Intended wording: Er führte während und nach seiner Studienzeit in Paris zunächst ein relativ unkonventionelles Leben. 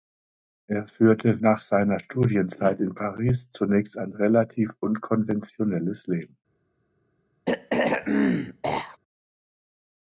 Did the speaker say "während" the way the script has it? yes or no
no